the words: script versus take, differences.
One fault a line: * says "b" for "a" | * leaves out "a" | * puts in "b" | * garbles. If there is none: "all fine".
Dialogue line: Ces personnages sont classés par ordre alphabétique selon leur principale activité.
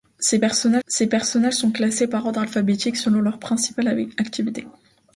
* puts in "ces personnages"